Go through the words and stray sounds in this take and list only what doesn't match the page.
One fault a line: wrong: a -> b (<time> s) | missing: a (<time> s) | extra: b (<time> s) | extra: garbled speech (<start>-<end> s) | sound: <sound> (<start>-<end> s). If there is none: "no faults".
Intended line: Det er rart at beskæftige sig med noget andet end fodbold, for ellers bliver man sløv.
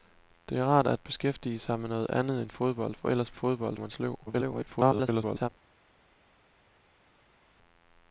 wrong: bliver -> fodbold (3.3 s)
extra: garbled speech (4.3-5.5 s)